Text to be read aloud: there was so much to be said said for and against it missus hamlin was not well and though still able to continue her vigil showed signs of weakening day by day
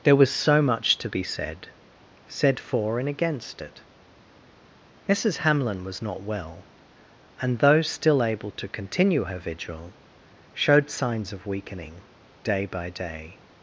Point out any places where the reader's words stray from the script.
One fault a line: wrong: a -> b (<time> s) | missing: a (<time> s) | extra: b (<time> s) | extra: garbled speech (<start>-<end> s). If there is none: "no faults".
no faults